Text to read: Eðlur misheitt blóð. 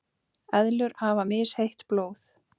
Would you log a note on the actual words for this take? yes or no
yes